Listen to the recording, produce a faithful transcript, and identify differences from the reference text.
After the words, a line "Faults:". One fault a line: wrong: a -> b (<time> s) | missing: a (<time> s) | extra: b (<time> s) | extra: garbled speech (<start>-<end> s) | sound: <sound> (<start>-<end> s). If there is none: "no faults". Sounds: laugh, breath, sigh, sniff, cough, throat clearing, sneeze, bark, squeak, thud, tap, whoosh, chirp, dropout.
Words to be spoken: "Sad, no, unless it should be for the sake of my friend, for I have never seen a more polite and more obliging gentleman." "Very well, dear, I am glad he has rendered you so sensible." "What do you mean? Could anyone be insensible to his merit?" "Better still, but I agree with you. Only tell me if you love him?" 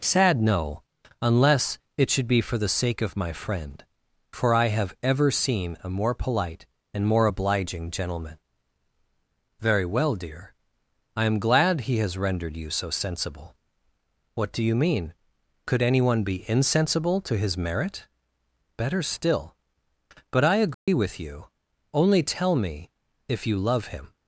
"Sad, no, unless it should be for the sake of my friend, for I have ever seen a more polite and more obliging gentleman." "Very well, dear, I am glad he has rendered you so sensible." "What do you mean? Could anyone be insensible to his merit?" "Better still, but I agree with you. Only tell me if you love him?"
Faults:
wrong: never -> ever (5.0 s)
sound: dropout (20.7-20.9 s)